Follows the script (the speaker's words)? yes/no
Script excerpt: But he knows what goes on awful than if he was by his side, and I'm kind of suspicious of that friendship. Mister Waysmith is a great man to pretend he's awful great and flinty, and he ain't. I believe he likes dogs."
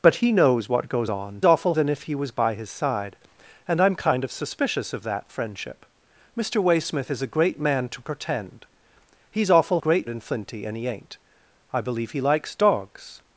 yes